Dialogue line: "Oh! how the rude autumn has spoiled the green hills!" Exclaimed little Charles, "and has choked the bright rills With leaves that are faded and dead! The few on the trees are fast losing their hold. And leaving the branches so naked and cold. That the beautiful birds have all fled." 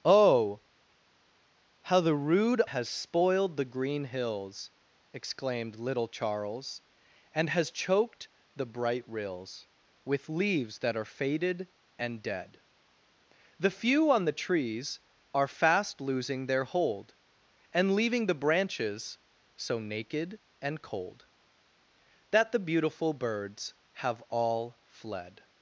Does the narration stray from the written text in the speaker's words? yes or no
yes